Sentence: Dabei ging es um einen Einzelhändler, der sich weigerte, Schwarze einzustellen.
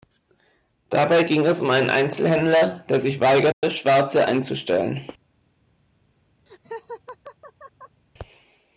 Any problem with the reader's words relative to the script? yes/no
no